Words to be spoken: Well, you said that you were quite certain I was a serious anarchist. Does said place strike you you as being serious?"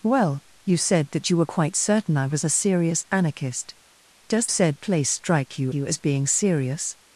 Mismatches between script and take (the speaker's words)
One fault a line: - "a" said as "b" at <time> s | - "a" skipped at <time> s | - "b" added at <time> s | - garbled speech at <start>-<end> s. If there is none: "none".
none